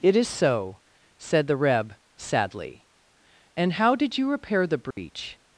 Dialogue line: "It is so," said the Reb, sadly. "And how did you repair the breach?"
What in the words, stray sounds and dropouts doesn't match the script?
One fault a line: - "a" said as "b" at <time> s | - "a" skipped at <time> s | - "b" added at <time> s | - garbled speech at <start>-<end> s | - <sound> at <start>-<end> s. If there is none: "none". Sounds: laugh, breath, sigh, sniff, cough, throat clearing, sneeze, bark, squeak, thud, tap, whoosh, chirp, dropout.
- dropout at 4.9-5.0 s